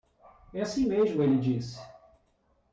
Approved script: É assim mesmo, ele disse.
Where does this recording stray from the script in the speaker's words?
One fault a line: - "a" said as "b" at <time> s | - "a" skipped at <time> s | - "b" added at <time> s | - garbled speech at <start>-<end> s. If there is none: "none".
none